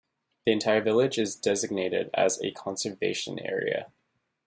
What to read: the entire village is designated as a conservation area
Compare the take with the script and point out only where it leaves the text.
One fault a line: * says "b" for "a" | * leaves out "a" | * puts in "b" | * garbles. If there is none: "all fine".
all fine